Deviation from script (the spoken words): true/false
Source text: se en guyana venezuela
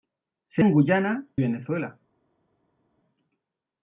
false